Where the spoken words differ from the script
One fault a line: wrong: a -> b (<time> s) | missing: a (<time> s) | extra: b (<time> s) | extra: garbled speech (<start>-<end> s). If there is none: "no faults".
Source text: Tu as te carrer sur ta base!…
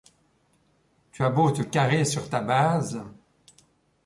extra: beau (1.3 s)